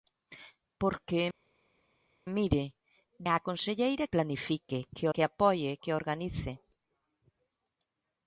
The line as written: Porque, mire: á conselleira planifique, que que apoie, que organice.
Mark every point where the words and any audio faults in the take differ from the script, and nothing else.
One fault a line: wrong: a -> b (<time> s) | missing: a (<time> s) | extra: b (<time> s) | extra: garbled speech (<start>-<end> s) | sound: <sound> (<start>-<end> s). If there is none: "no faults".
no faults